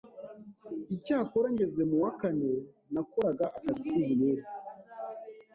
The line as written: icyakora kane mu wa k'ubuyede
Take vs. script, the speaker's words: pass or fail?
fail